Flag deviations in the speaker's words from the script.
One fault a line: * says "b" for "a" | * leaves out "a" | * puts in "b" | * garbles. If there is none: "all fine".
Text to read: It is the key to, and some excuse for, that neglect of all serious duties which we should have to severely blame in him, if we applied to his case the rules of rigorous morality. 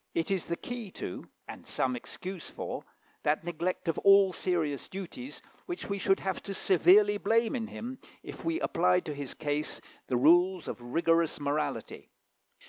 all fine